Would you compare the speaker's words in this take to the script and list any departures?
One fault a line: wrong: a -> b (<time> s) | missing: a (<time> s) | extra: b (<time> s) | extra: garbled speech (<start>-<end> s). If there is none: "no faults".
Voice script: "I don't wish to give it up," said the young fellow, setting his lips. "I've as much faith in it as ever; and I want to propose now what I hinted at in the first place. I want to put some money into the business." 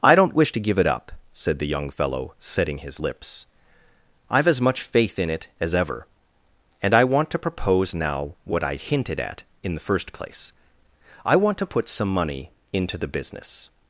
no faults